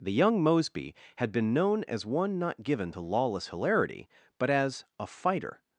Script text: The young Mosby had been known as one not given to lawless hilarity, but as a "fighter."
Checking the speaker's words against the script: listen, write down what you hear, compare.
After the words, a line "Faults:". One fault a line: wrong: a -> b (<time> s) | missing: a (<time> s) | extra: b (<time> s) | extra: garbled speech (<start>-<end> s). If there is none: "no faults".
The young Mosby had been known as one not given to lawless hilarity, but as a "fighter."
Faults:
no faults